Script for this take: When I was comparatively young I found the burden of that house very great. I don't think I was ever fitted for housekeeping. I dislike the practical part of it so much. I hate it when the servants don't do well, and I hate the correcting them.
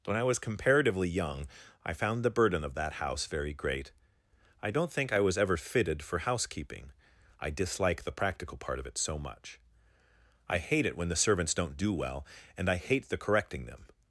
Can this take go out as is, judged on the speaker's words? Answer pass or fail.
pass